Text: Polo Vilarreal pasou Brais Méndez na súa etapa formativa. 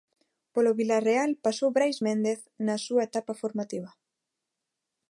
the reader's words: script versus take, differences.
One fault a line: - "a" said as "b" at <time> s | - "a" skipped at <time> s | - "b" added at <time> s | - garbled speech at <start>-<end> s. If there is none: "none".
none